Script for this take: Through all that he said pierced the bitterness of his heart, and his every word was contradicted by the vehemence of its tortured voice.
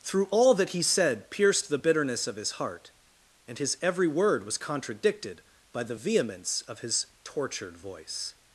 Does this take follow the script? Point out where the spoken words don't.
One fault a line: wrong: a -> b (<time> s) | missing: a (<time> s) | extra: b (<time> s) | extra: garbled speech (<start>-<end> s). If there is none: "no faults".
wrong: its -> his (6.8 s)